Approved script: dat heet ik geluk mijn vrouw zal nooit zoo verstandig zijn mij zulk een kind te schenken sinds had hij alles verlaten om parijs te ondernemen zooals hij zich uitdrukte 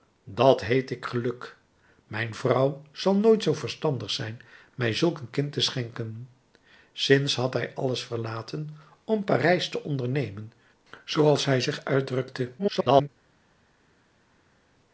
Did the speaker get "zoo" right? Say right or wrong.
right